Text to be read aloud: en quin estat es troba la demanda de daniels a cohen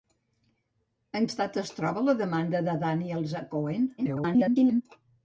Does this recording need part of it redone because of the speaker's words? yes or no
yes